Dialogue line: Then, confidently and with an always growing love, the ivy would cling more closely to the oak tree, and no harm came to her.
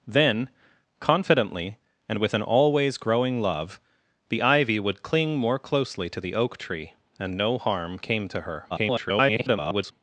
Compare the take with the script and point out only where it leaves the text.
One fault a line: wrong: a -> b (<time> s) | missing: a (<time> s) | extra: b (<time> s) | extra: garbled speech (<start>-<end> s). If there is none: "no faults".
extra: garbled speech (8.7-9.9 s)